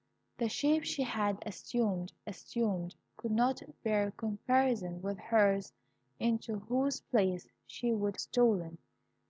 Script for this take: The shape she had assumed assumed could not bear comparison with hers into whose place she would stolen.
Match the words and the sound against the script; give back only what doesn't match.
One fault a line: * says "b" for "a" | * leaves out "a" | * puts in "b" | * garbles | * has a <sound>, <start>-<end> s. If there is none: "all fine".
all fine